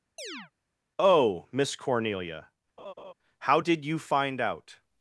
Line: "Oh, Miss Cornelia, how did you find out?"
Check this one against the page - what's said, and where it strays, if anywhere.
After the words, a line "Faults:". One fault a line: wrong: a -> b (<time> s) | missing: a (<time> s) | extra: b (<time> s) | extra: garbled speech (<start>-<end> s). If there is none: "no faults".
"Oh, Miss Cornelia, how did you find out?"
Faults:
no faults